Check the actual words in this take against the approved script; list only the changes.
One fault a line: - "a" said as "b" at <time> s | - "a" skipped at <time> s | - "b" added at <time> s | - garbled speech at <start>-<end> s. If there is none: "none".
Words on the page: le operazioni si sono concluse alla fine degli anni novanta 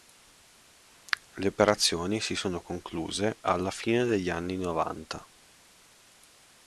none